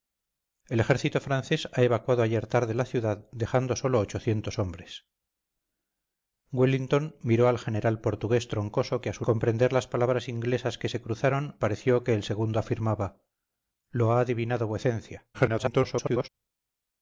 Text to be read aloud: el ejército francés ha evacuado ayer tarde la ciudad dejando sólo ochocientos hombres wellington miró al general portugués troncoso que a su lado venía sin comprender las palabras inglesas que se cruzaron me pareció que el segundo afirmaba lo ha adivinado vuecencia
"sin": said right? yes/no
no